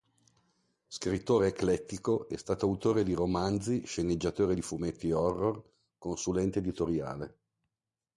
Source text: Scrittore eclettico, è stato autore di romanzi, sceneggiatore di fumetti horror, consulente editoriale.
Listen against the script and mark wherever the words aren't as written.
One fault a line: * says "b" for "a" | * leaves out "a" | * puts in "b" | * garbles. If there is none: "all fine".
all fine